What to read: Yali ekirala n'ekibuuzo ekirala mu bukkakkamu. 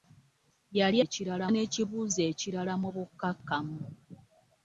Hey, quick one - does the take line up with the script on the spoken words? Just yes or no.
yes